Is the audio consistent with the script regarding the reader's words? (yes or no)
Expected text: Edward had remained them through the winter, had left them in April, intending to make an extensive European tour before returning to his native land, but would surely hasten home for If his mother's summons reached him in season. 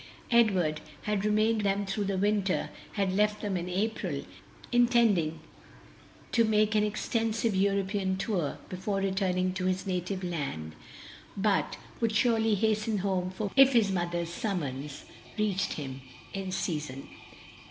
yes